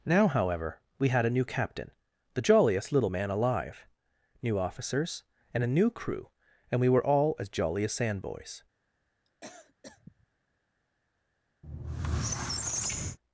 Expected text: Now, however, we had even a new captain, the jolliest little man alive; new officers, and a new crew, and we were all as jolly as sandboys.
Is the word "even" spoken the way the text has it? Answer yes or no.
no